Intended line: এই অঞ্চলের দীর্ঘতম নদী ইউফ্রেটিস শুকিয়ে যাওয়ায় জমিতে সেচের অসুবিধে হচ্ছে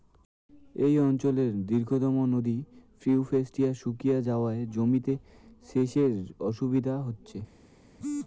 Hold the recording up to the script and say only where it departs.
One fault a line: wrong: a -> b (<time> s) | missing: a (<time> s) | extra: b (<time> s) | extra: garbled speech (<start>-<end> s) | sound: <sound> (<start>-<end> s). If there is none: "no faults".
no faults